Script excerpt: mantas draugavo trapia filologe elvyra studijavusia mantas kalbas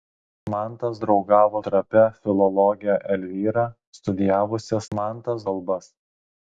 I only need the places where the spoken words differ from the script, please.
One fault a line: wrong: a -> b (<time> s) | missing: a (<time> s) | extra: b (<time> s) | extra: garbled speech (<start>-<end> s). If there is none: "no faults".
no faults